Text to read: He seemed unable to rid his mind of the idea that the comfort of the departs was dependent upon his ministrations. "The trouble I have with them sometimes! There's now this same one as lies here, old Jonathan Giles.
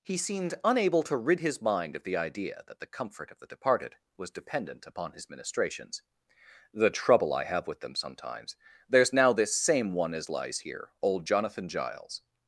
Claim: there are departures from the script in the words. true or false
true